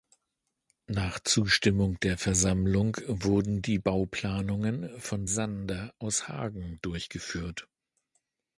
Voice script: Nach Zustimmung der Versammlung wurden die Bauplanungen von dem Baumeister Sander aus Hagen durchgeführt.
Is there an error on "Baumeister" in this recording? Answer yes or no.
yes